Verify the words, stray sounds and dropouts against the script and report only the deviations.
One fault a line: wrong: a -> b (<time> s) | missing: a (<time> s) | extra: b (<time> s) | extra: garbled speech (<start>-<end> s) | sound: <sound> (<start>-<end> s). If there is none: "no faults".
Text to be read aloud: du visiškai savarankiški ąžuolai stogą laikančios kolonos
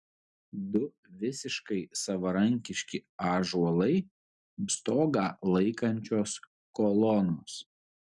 no faults